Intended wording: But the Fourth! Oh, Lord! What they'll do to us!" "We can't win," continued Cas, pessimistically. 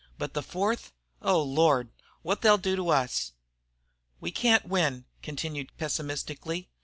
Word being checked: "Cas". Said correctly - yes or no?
no